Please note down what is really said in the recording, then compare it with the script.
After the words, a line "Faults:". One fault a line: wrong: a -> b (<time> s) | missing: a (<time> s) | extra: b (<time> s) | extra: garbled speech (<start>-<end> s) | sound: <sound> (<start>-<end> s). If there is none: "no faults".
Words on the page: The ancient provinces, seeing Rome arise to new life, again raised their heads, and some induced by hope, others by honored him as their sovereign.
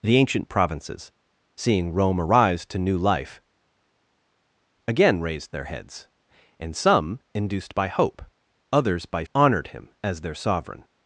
The ancient provinces, seeing Rome arise to new life, again raised their heads, and some induced by hope, others by honored him as their sovereign.
Faults:
no faults